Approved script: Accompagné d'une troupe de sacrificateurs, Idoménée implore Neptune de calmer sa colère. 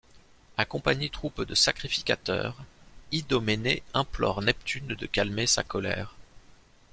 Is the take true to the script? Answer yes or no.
no